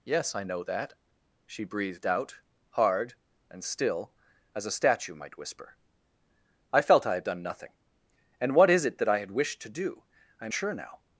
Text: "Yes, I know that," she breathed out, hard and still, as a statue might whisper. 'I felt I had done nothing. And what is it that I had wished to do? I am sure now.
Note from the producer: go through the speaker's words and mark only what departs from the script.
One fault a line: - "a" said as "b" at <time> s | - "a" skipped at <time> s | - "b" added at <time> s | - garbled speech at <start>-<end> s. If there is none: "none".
none